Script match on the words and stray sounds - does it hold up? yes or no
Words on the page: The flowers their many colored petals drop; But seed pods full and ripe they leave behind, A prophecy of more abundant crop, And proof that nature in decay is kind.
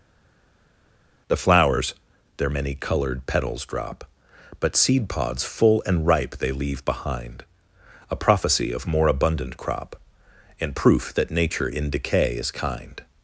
yes